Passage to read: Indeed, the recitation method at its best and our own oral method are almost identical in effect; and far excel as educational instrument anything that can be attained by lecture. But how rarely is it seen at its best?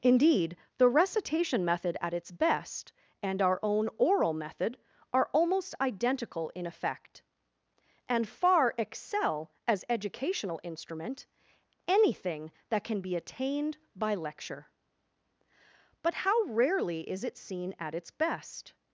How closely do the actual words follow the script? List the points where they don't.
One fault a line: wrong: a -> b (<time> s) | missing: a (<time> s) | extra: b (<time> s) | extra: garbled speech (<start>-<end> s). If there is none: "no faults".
no faults